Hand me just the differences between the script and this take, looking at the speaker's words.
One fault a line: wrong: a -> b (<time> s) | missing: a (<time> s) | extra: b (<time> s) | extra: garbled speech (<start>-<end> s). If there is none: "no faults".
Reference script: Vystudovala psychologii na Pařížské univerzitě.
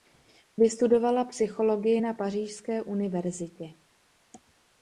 no faults